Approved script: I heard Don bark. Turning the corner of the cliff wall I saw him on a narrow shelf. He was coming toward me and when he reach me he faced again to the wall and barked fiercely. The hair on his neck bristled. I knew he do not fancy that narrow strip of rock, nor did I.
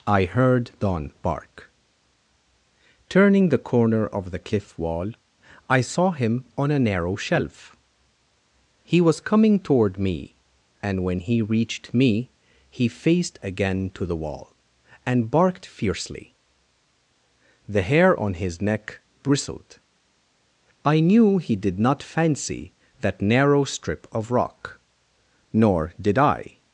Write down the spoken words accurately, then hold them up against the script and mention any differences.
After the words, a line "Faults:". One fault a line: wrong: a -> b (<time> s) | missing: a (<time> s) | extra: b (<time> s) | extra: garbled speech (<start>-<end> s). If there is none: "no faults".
I heard Don bark. Turning the corner of the cliff wall I saw him on a narrow shelf. He was coming toward me and when he reached me he faced again to the wall and barked fiercely. The hair on his neck bristled. I knew he did not fancy that narrow strip of rock, nor did I.
Faults:
wrong: reach -> reached (11.4 s)
wrong: do -> did (21.6 s)